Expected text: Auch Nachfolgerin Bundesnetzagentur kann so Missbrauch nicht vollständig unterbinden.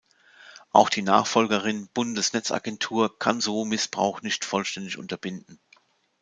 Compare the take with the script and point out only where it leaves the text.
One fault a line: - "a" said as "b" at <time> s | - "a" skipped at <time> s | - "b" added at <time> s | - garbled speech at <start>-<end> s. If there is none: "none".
- "die" added at 0.9 s